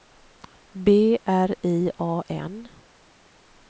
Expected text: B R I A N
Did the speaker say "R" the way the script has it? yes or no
yes